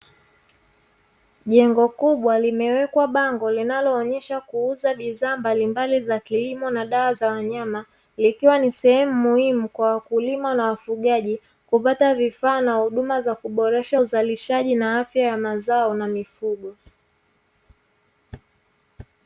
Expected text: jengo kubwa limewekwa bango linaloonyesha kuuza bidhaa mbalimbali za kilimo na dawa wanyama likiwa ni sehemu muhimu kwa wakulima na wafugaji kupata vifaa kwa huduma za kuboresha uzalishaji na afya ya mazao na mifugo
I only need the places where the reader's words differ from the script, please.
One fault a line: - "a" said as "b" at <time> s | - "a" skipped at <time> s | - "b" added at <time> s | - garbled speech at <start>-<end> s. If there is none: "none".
- "za" added at 7.1 s
- "kwa" said as "na" at 12.6 s